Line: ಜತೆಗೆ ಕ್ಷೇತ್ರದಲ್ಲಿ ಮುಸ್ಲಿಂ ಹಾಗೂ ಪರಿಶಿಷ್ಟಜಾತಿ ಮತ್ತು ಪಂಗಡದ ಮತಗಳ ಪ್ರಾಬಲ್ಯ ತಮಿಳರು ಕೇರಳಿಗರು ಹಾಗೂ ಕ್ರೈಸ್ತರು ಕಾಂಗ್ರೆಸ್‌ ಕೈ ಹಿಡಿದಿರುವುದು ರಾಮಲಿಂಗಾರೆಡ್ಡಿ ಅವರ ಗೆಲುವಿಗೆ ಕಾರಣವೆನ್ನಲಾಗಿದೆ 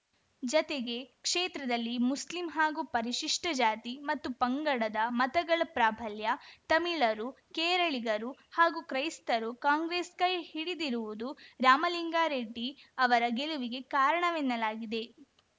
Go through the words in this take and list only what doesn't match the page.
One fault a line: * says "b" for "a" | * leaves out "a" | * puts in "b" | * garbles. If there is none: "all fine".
all fine